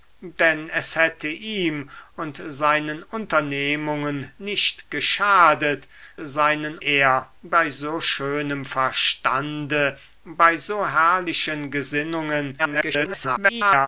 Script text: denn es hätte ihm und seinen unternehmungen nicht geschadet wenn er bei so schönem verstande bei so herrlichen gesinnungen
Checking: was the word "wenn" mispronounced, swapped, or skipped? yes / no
yes